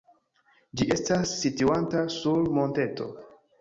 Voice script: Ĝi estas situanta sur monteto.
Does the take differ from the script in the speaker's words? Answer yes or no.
no